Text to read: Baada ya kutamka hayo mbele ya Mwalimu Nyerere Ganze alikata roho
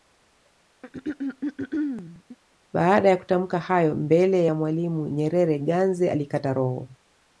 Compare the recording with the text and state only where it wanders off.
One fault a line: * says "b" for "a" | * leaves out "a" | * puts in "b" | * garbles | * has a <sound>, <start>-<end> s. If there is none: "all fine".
* has a throat clearing, 0.8-2.4 s